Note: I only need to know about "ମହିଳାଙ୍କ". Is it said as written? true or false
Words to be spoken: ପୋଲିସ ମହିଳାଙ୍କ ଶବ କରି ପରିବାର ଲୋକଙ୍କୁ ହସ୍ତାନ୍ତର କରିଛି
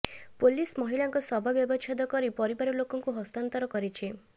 true